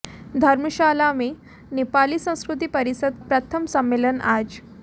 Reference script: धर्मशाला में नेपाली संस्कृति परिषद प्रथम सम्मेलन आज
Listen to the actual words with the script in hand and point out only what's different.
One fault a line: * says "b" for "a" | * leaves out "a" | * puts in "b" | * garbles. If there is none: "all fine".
all fine